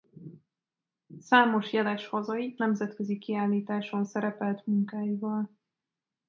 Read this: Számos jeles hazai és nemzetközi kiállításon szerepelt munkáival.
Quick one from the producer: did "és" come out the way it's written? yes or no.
no